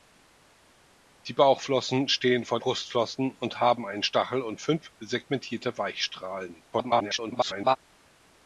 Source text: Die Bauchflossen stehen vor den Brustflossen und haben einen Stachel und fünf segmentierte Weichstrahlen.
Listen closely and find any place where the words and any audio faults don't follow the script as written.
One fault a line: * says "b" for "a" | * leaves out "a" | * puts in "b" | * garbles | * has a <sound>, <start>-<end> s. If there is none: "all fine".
* leaves out "den"
* garbles